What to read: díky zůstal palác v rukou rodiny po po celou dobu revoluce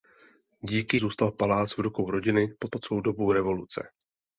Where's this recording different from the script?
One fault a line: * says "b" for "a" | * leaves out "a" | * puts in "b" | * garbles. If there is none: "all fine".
all fine